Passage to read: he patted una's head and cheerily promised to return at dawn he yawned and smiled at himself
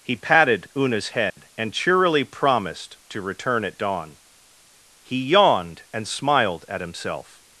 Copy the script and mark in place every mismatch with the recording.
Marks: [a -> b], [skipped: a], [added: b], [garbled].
he patted una's head and cheerily promised to return at dawn he yawned and smiled at himself